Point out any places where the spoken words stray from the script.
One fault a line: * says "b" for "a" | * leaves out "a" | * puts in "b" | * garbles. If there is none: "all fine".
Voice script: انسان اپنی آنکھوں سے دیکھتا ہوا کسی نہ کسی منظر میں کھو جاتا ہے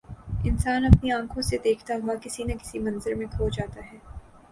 all fine